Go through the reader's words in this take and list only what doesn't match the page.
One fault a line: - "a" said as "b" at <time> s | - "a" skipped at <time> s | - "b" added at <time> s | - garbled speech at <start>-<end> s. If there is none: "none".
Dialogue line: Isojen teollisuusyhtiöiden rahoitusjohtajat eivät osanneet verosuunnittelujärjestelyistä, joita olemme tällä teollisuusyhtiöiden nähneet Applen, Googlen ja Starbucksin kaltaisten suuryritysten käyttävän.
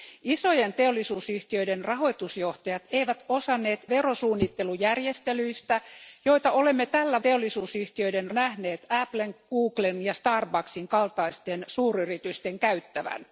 none